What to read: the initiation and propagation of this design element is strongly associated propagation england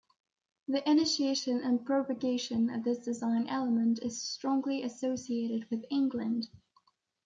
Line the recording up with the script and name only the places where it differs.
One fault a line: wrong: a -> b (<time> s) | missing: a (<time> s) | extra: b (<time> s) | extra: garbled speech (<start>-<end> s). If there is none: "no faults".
wrong: propagation -> with (5.7 s)